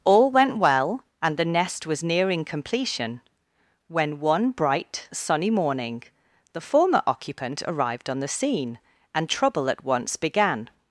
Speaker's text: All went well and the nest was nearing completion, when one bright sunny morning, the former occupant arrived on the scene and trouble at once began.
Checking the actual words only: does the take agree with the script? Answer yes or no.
yes